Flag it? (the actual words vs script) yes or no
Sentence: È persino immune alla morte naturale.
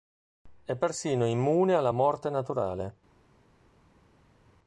no